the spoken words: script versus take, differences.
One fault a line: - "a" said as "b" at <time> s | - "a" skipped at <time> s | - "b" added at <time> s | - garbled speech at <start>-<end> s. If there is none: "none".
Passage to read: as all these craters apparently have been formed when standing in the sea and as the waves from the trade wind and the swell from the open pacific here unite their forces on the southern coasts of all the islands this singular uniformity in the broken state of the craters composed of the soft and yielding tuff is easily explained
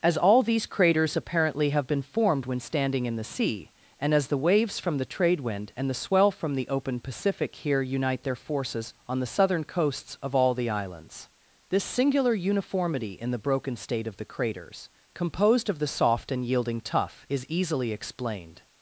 none